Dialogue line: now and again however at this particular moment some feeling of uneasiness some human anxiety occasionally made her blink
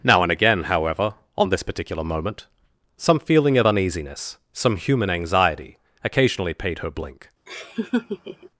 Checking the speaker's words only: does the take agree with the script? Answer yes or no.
no